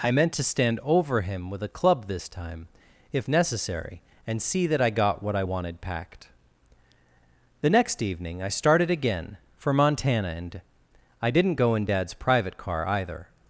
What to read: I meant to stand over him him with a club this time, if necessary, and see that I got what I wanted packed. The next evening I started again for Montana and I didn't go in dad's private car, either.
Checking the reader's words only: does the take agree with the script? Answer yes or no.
no